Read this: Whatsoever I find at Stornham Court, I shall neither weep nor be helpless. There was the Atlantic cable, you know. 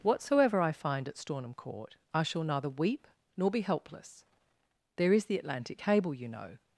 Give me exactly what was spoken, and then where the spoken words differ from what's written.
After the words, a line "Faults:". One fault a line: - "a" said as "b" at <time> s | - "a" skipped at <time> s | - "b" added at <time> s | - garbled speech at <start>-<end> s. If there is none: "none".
Whatsoever I find at Stornham Court, I shall neither weep nor be helpless. There is the Atlantic cable, you know.
Faults:
- "was" said as "is" at 5.1 s